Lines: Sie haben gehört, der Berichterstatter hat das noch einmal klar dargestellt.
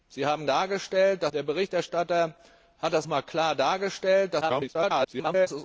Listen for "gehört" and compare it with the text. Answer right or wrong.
wrong